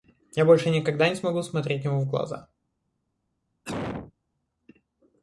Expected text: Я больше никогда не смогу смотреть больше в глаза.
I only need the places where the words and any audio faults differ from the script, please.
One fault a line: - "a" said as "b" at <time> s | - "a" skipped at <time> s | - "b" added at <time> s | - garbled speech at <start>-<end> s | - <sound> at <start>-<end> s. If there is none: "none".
- "больше" said as "ему" at 1.8 s
- cough at 3.7-4.1 s